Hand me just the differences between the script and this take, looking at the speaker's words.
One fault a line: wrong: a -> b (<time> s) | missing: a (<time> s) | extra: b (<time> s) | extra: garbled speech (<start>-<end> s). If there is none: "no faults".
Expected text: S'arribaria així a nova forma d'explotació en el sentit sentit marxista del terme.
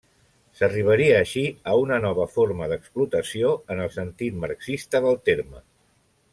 extra: una (1.9 s)
missing: sentit (4.4 s)